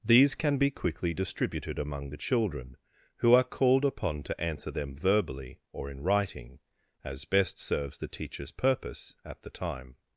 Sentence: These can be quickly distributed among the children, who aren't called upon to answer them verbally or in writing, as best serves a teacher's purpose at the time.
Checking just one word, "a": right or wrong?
wrong